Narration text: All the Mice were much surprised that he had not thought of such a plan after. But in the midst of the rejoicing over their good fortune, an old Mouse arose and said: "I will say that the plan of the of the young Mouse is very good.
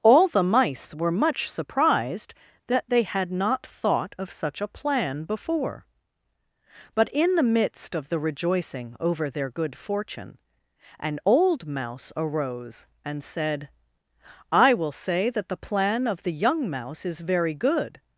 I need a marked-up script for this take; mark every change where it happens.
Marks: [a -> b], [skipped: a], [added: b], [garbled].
All the Mice were much surprised that [he -> they] had not thought of such a plan [after. -> before] But in the midst of the rejoicing over their good fortune, an old Mouse arose and said: "I will say that the plan of the [skipped: of the] young Mouse is very good.